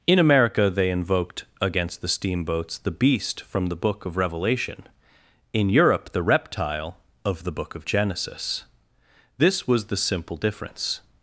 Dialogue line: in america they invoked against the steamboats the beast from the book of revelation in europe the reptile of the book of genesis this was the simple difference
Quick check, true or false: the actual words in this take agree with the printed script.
true